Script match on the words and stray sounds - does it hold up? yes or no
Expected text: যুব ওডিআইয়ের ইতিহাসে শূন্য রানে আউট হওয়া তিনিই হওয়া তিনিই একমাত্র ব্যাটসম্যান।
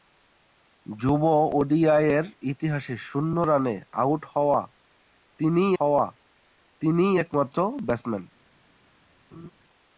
no